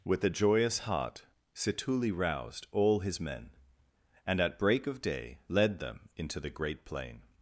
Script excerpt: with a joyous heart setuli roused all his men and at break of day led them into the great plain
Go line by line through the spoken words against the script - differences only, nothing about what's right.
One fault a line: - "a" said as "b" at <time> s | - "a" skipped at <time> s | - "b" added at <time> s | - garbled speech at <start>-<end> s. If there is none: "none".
none